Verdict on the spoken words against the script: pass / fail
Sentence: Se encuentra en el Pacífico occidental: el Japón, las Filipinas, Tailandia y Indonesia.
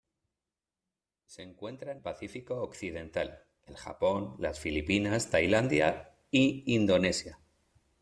fail